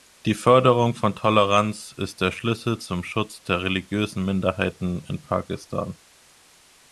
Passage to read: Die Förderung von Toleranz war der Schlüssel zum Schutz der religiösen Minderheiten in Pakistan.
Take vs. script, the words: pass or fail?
fail